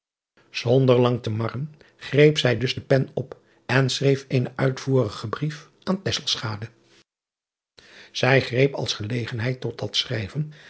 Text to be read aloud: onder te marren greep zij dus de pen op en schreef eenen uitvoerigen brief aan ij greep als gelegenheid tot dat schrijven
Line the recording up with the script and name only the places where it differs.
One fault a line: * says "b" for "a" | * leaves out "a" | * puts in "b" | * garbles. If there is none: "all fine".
* puts in "lang"